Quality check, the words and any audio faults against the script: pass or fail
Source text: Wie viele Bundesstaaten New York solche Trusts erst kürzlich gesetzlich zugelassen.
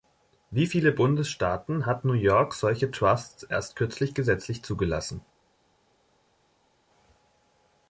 fail